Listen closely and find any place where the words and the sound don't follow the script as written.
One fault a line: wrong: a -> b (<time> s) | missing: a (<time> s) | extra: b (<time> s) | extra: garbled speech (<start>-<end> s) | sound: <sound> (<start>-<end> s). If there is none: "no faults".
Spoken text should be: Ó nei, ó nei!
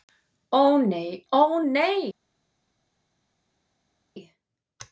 no faults